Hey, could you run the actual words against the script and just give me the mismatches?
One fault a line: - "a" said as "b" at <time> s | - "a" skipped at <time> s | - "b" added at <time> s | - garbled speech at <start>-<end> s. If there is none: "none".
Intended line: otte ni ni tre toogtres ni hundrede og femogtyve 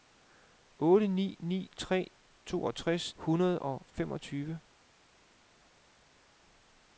- "ni" skipped at 3.1 s